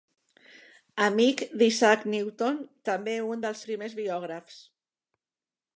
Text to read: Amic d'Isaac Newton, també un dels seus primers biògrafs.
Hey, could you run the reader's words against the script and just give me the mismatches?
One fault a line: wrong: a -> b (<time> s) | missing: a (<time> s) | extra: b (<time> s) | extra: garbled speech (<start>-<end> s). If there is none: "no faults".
missing: seus (3.7 s)